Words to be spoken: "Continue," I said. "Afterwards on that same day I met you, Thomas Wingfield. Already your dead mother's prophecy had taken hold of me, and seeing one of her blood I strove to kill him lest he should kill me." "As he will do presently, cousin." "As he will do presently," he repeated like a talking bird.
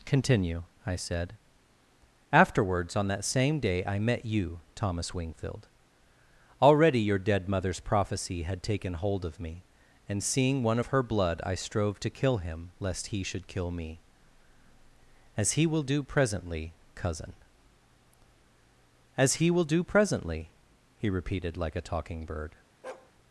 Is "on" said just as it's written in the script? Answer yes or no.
yes